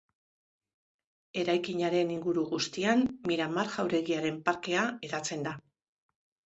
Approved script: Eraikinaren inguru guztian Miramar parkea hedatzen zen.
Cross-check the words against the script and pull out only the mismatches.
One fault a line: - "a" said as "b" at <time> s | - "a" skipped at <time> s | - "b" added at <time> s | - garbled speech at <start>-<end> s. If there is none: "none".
- "jauregiaren" added at 3.8 s
- "zen" said as "da" at 5.5 s